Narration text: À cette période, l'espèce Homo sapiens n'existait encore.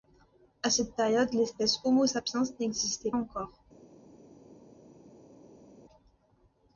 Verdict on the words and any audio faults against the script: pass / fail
pass